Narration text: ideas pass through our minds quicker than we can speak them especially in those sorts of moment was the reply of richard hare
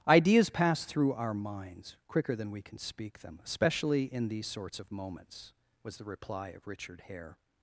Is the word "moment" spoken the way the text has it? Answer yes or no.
no